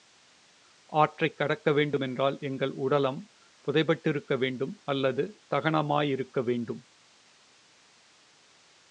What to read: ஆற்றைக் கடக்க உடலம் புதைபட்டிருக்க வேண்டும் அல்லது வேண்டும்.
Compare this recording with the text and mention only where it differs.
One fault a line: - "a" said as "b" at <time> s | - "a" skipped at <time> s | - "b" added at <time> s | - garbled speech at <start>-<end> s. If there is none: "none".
- "வேண்டுமென்றால் எங்கள்" added at 1.7 s
- "தகனமாயிருக்க" added at 5.5 s